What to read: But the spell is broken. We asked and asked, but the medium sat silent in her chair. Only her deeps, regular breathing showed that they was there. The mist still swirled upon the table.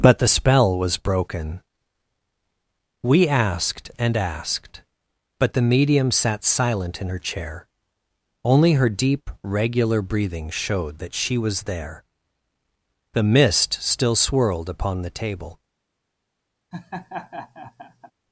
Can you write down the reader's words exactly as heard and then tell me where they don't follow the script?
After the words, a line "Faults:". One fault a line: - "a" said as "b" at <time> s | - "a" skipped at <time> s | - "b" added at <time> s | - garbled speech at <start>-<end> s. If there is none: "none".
But the spell was broken. We asked and asked, but the medium sat silent in her chair. Only her deep, regular breathing showed that she was there. The mist still swirled upon the table.
Faults:
- "is" said as "was" at 0.8 s
- "deeps" said as "deep" at 8.9 s
- "they" said as "she" at 11.1 s